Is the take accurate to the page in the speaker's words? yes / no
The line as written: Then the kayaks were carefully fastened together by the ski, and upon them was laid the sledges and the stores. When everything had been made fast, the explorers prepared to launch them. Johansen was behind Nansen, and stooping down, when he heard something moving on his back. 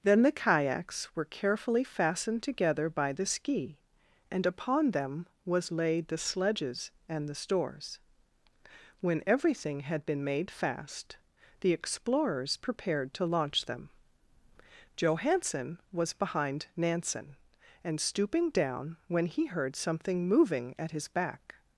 no